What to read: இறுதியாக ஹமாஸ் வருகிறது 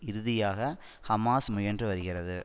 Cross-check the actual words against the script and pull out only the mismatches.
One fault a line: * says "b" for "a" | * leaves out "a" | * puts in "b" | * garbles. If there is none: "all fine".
* puts in "முயன்று"